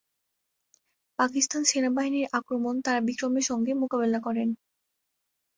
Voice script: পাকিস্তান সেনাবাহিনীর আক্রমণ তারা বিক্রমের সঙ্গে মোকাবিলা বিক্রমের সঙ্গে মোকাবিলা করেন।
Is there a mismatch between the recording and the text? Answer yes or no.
yes